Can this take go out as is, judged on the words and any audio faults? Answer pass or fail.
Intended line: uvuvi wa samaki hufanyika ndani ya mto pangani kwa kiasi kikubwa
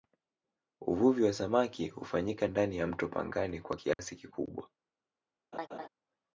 fail